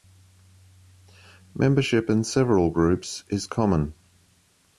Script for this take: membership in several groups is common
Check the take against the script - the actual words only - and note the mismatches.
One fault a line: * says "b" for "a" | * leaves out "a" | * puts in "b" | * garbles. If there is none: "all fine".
all fine